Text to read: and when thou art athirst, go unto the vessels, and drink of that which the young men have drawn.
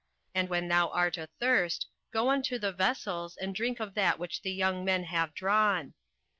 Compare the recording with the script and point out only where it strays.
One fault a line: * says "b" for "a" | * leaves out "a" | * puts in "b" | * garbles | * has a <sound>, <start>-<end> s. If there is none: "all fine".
all fine